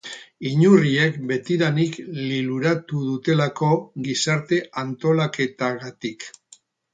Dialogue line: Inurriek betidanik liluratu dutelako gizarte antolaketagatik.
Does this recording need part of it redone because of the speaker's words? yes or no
no